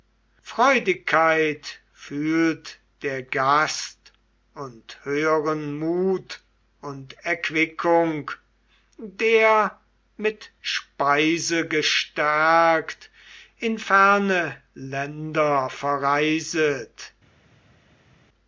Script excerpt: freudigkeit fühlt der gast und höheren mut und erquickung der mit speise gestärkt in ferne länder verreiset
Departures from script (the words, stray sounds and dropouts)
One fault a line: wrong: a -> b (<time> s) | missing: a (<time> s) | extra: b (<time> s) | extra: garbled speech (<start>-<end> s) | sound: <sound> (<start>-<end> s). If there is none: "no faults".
no faults